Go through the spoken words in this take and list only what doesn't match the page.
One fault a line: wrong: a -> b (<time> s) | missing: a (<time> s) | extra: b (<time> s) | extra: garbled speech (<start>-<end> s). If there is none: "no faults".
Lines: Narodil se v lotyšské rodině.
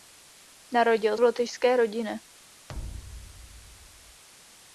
missing: se (1.2 s)